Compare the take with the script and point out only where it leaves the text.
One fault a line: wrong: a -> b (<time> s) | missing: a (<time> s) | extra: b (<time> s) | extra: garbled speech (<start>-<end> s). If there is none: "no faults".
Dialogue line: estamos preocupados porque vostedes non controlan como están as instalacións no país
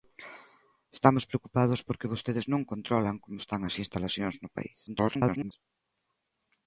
extra: garbled speech (4.9-5.5 s)